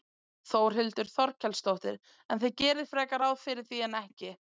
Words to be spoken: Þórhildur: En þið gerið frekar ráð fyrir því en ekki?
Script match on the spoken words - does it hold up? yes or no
no